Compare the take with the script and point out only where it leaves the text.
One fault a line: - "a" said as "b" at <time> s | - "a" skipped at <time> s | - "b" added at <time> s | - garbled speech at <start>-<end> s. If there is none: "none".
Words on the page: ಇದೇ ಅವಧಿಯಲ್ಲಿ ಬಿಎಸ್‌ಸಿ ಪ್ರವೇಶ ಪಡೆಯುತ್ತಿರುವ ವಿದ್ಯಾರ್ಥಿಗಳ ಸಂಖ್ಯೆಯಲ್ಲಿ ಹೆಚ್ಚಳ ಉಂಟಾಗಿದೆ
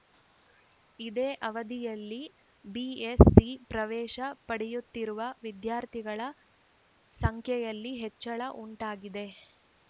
none